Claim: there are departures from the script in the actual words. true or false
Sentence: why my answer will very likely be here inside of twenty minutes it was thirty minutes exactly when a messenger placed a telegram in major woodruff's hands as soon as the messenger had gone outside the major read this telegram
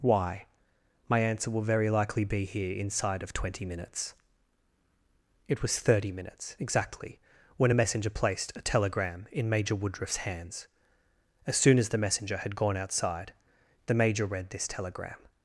false